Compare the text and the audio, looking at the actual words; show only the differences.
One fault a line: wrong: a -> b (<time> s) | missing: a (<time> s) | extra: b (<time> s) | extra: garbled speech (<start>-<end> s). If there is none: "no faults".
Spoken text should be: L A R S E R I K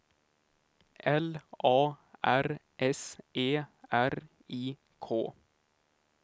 no faults